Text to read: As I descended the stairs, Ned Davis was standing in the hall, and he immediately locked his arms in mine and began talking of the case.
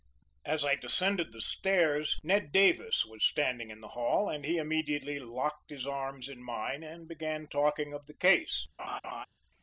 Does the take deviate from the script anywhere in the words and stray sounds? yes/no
yes